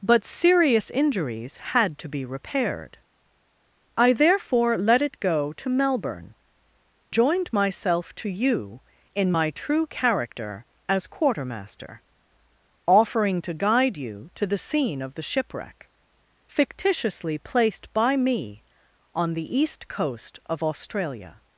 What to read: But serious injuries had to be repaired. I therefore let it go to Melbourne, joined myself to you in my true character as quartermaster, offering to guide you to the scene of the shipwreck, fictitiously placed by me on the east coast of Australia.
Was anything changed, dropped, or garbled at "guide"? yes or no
no